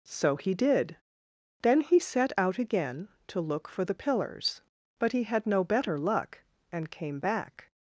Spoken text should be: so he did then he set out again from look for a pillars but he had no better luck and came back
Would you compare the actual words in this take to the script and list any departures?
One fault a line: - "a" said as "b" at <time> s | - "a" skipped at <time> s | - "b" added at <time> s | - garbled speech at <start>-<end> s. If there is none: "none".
- "from" said as "to" at 3.3 s
- "a" said as "the" at 3.8 s